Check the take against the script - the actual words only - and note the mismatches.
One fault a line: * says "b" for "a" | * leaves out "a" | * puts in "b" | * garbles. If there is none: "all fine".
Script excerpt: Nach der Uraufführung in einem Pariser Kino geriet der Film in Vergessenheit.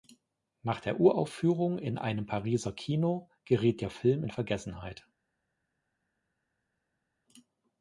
all fine